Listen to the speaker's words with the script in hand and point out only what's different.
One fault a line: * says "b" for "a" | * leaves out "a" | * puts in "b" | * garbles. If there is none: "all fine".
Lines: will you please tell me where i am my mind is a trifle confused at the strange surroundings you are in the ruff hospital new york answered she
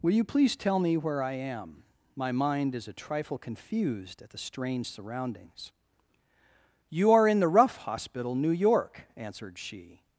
all fine